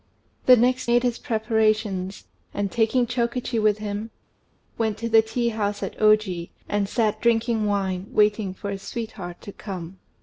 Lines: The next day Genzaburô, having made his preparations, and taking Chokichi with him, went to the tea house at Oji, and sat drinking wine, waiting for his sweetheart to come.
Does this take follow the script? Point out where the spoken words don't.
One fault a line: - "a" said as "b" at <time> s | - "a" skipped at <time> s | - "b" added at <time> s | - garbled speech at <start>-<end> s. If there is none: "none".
- "day Genzaburô having" skipped at 0.9 s